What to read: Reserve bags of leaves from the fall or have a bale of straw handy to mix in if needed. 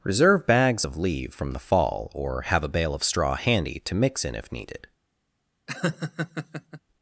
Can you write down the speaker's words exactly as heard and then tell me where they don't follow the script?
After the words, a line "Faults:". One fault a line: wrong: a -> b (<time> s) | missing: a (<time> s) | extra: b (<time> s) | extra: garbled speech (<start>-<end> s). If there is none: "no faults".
Reserve bags of leave from the fall or have a bale of straw handy to mix in if needed.
Faults:
wrong: leaves -> leave (1.0 s)